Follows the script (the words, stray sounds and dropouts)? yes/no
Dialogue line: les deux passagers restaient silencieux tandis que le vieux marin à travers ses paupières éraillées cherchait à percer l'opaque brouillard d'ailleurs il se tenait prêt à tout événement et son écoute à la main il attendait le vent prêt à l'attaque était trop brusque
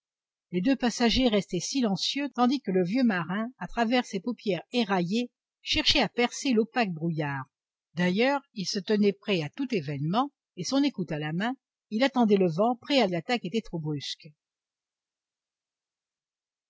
yes